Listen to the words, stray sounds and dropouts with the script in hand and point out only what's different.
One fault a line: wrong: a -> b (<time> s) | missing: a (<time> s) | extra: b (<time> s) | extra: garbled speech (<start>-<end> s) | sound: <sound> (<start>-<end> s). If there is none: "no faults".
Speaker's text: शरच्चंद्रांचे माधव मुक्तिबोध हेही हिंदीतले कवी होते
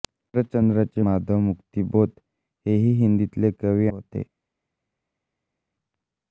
no faults